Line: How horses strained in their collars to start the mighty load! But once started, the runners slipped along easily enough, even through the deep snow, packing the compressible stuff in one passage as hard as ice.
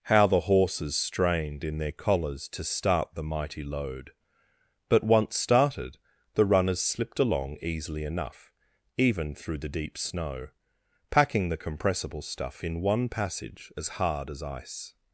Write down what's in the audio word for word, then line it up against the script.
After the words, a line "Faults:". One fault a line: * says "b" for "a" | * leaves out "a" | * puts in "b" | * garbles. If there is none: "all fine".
How the horses strained in their collars to start the mighty load! But once started, the runners slipped along easily enough, even through the deep snow, packing the compressible stuff in one passage as hard as ice.
Faults:
* puts in "the"